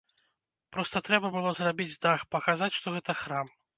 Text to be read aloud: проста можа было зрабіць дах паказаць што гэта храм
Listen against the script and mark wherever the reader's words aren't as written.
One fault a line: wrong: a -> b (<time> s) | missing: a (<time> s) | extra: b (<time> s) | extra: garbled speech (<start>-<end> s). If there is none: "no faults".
wrong: можа -> трэба (1.1 s)